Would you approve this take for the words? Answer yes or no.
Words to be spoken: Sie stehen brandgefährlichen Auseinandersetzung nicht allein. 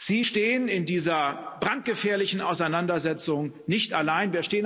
no